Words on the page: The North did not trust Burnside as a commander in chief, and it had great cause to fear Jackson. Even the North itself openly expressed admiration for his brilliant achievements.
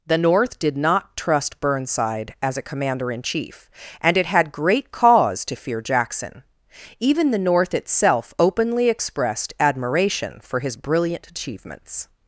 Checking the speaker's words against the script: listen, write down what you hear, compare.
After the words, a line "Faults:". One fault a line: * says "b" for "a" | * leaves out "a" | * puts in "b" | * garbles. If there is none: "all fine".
The North did not trust Burnside as a commander in chief, and it had great cause to fear Jackson. Even the North itself openly expressed admiration for his brilliant achievements.
Faults:
all fine